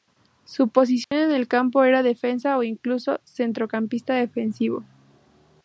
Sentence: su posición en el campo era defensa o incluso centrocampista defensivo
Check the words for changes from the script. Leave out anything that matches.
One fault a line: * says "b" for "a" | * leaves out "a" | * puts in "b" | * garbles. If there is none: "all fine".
all fine